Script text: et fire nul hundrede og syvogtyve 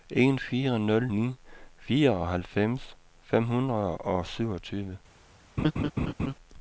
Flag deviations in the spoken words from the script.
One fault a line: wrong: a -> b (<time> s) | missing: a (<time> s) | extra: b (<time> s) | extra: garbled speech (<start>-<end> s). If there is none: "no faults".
wrong: et -> en (0.1 s)
extra: ni fireoghalvfems fem (1.1 s)